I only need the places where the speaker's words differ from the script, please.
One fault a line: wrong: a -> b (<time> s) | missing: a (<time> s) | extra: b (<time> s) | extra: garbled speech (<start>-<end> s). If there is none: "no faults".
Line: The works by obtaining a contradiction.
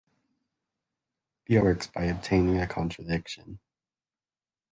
no faults